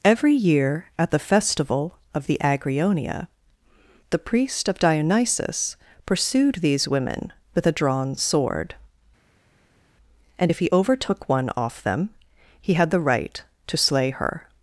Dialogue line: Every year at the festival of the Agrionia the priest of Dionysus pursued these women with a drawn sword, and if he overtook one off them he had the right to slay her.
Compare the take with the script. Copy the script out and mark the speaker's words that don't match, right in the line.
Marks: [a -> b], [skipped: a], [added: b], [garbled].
Every year at the festival of the Agrionia the priest of Dionysus pursued these women with a drawn sword, and if he overtook one off them he had the right to slay her.